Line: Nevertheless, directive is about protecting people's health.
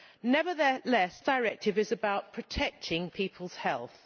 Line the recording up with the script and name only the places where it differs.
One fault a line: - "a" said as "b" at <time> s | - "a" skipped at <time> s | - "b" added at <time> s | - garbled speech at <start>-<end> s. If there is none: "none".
none